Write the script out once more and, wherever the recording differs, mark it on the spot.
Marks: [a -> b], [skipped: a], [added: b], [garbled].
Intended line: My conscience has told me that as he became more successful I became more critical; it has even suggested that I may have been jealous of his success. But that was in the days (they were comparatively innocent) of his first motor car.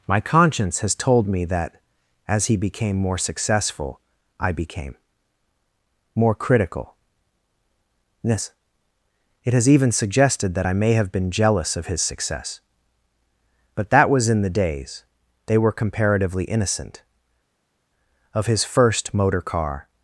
My conscience has told me that as he became more successful I became more critical; [added: yes] it has even suggested that I may have been jealous of his success. But that was in the days (they were comparatively innocent) of his first motor car.